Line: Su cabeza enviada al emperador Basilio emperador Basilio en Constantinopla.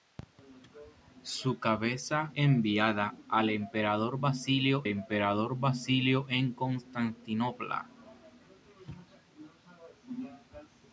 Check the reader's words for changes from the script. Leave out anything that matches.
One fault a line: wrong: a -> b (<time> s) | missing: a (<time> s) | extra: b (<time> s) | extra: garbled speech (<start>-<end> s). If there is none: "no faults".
no faults